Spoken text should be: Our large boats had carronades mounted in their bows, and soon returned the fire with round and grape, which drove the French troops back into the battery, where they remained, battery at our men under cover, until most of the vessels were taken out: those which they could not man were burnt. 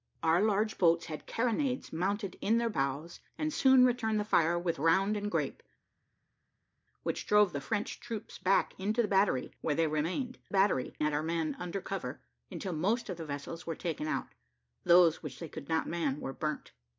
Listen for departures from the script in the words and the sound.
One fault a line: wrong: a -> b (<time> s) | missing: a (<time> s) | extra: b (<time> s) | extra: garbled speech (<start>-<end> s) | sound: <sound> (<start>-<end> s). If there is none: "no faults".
no faults